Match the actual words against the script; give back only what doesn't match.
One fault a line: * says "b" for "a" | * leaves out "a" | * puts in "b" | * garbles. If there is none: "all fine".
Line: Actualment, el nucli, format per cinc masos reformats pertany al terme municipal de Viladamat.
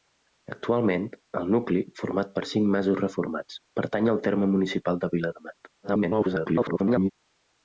* garbles